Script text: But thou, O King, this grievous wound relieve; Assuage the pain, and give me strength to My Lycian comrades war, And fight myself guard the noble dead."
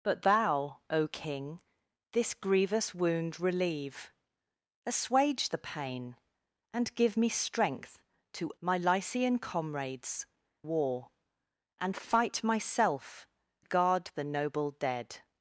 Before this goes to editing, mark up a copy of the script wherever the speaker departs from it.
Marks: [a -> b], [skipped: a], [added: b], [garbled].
But thou, O King, this grievous wound relieve; Assuage the pain, and give me strength to My Lycian comrades war, And fight myself guard the noble dead."